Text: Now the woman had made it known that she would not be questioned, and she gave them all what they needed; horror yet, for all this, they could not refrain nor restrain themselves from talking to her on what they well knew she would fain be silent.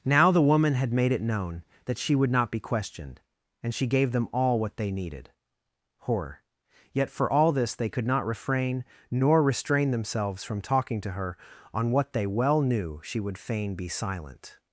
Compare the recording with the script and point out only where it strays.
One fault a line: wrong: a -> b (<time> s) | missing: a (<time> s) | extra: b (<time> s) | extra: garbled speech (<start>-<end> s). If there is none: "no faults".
no faults